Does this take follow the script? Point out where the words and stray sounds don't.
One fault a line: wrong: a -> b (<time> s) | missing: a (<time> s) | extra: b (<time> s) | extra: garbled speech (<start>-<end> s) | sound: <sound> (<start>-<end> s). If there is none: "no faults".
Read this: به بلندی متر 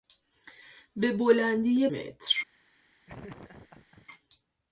sound: laugh (3.1-4.1 s)